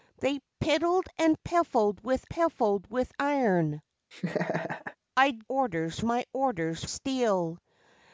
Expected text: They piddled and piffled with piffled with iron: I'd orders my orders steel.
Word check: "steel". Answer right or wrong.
right